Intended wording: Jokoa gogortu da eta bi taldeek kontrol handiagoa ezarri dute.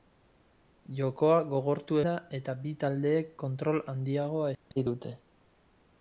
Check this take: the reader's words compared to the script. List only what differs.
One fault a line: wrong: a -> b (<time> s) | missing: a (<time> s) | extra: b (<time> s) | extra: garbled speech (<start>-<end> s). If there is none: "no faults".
no faults